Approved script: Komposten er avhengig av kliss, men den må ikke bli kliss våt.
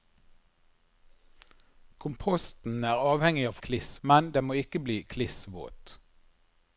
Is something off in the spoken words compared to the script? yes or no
no